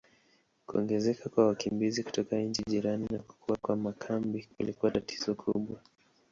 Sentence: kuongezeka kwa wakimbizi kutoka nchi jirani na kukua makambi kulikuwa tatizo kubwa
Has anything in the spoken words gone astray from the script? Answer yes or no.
yes